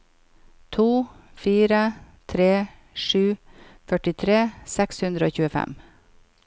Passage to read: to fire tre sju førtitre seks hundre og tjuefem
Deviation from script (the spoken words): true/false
false